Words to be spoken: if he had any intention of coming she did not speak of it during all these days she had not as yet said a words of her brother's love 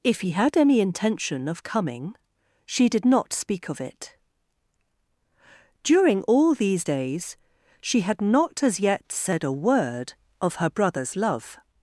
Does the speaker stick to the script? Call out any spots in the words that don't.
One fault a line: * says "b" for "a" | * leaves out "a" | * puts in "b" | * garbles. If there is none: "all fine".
* says "word" for "words"